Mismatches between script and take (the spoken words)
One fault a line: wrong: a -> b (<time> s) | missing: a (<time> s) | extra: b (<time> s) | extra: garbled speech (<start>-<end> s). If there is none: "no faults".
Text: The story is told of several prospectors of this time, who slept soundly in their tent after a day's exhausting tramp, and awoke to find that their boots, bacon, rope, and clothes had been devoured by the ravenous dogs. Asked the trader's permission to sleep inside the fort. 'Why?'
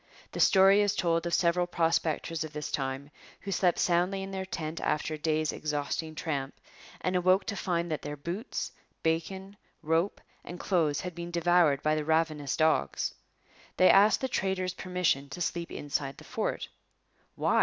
extra: They (13.8 s)